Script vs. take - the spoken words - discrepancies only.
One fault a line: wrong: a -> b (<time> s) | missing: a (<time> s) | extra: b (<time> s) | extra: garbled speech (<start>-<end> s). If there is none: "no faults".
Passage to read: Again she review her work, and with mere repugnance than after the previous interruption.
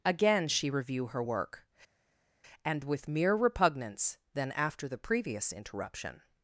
no faults